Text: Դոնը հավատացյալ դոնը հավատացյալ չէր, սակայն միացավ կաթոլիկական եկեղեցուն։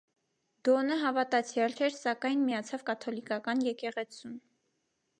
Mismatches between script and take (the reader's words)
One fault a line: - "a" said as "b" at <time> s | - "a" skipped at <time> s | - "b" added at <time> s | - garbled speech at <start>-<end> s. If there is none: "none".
- "դոնը հավատացյալ" skipped at 1.8 s